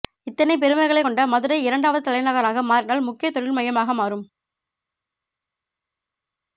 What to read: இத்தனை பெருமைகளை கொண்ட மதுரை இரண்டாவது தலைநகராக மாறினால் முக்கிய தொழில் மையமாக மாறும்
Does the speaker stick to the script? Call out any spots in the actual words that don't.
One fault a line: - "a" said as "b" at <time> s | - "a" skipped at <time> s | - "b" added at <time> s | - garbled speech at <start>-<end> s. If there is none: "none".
none